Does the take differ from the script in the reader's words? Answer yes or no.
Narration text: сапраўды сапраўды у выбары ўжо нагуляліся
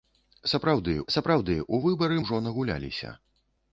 no